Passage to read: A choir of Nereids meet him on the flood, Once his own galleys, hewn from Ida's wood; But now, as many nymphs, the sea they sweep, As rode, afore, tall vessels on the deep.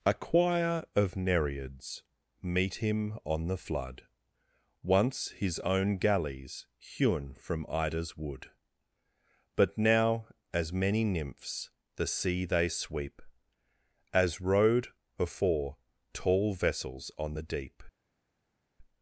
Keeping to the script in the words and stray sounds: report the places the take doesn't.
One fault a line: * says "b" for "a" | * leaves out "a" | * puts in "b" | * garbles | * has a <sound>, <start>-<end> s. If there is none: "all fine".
all fine